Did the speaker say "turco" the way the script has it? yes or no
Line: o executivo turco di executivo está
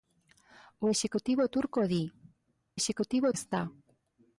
yes